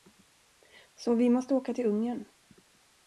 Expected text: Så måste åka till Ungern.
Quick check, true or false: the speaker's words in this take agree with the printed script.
false